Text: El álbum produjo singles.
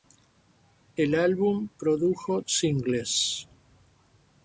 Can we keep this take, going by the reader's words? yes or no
yes